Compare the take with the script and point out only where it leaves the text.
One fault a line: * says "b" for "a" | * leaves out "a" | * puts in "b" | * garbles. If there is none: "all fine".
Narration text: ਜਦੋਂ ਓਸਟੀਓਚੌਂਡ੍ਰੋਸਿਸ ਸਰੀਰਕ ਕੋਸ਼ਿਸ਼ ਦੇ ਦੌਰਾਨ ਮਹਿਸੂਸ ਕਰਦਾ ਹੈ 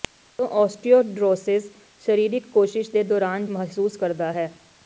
all fine